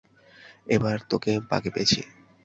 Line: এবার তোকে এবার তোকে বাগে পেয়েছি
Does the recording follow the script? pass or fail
fail